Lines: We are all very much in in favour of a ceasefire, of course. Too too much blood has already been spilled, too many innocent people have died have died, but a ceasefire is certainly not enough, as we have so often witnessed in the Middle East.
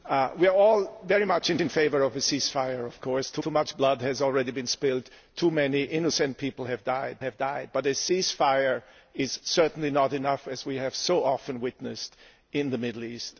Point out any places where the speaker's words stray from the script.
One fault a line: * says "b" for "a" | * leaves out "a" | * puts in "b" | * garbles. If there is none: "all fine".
all fine